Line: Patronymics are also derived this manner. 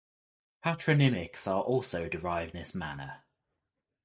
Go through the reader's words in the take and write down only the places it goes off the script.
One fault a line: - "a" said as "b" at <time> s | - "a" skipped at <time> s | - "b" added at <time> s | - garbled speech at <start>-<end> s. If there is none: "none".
none